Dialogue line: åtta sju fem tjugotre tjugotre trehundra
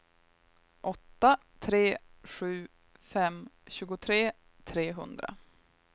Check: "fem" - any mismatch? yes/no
no